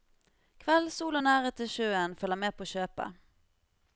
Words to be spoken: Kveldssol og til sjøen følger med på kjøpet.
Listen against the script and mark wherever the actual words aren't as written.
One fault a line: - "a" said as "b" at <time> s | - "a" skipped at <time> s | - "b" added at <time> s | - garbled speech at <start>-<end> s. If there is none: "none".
- "nærhet" added at 1.3 s